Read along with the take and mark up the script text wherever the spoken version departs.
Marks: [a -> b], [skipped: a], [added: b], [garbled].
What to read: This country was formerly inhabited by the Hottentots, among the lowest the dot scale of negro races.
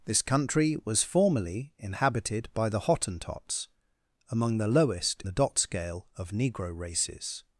This country was formerly inhabited by the Hottentots, among the lowest the dot scale of negro races.